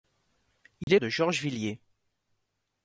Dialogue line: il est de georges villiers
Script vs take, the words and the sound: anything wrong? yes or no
yes